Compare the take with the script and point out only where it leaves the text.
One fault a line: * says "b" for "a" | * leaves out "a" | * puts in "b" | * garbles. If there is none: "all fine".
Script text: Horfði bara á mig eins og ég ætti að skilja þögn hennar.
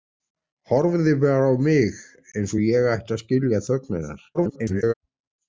* garbles